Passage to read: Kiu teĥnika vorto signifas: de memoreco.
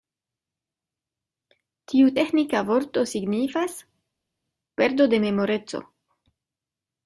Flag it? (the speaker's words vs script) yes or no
yes